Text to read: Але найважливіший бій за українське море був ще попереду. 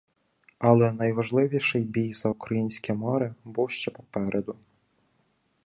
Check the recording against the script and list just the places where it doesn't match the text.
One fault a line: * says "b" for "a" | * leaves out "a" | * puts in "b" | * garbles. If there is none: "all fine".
all fine